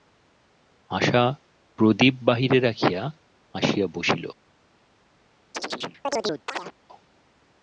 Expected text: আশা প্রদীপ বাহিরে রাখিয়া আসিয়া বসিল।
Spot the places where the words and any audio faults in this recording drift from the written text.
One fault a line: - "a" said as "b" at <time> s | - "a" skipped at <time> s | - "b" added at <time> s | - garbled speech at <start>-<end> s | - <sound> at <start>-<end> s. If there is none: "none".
- chirp at 5.5-6.7 s